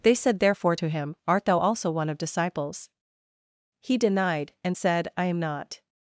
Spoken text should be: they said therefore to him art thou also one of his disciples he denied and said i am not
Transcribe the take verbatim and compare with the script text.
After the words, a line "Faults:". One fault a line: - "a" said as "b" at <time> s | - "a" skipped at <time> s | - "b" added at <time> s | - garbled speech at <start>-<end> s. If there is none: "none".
they said therefore to him art thou also one of disciples he denied and said i am not
Faults:
- "his" skipped at 2.2 s